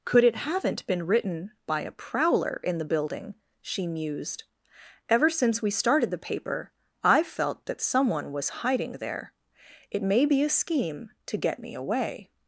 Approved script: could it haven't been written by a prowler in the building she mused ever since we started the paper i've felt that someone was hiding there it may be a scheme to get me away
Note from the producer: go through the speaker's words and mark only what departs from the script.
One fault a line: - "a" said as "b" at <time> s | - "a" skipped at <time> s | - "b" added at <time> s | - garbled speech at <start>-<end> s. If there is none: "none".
none